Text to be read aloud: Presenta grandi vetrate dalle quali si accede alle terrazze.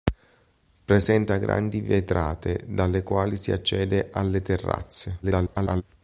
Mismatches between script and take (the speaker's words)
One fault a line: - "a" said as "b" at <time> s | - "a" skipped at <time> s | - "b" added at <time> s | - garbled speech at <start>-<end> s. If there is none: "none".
- garbled speech at 5.2-5.8 s